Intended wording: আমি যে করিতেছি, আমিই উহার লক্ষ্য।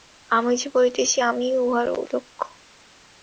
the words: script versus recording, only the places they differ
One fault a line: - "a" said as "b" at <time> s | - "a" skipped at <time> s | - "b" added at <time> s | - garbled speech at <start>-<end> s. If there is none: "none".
none